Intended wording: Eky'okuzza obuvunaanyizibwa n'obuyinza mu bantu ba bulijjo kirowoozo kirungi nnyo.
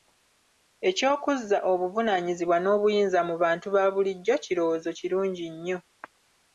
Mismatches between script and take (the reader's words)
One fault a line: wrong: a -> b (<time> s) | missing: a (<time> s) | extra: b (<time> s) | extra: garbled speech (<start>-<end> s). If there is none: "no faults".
no faults